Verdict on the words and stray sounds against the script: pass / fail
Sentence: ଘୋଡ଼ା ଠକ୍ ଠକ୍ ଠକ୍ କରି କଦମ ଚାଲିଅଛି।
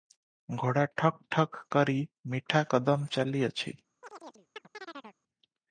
fail